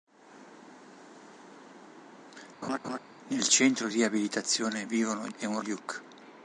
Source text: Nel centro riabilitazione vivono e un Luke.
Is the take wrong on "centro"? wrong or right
right